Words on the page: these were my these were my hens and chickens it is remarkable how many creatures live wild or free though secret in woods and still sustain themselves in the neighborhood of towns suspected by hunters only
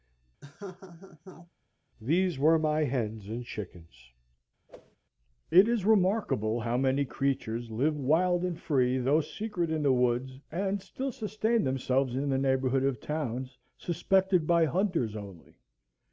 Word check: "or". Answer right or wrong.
wrong